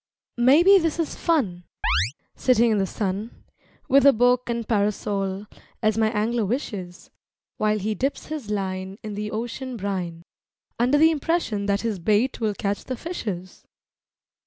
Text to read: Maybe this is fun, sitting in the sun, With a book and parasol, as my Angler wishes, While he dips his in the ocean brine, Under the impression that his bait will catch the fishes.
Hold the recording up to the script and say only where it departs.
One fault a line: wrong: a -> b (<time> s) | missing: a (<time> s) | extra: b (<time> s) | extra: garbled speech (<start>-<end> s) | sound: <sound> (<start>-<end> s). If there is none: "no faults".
sound: chirp (1.8-2.1 s)
extra: line (8.5 s)